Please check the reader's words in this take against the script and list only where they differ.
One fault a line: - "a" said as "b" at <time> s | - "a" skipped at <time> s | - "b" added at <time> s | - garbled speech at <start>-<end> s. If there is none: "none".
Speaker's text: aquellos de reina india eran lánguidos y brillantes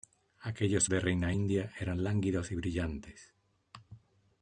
none